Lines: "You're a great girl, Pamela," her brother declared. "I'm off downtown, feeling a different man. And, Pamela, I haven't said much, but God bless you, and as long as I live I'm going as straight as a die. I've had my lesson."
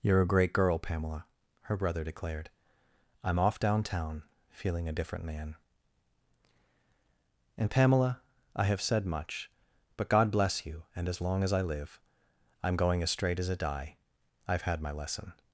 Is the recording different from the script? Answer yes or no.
yes